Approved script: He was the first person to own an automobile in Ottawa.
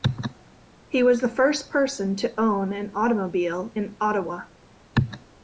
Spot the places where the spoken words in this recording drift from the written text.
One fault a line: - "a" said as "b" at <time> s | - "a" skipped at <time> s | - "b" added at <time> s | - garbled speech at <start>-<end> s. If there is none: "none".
none